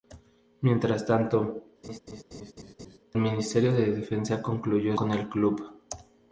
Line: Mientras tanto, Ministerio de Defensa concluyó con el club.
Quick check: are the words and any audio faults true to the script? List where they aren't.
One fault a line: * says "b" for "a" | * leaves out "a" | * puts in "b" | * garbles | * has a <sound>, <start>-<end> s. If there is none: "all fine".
* has a laugh, 1.8-3.0 s